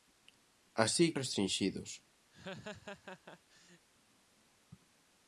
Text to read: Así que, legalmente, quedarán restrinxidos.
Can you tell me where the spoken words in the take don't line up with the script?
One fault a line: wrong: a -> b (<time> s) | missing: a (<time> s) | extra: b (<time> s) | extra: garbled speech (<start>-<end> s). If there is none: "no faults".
missing: que legalmente quedarán (1.1 s)